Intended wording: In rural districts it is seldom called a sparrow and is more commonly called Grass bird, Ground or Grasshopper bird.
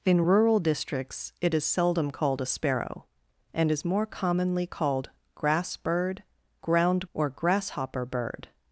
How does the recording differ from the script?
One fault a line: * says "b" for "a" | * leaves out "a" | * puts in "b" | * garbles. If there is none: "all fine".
all fine